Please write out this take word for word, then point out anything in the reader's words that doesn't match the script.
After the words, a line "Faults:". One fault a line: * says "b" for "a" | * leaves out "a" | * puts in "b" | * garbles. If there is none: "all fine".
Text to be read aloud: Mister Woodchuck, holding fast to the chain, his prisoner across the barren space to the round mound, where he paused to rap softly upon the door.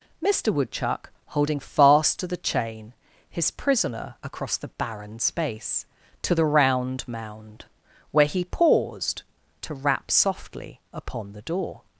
Mister Woodchuck, holding fast to the chain, his prisoner across the barren space to the round mound, where he paused to rap softly upon the door.
Faults:
all fine